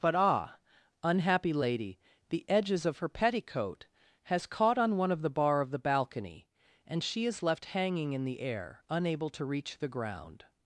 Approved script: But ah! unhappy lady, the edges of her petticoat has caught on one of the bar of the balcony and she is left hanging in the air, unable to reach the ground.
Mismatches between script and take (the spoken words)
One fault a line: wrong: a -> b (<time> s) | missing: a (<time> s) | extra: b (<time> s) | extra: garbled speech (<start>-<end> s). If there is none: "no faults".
no faults